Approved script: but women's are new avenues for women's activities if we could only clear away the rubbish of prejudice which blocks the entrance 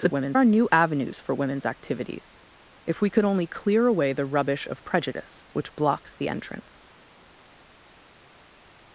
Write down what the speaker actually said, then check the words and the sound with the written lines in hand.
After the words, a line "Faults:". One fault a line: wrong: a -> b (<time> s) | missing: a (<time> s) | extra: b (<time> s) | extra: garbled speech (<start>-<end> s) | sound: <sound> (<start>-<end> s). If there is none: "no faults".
but women's are new avenues for women's activities if we could only clear away the rubbish of prejudice which blocks the entrance
Faults:
no faults